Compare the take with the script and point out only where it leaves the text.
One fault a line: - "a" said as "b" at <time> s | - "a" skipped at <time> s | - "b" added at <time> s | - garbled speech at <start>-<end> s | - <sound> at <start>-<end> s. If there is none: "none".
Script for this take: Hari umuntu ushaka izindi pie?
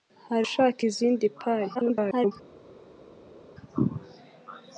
- "umuntu" skipped at 0.5 s
- garbled speech at 1.7-2.3 s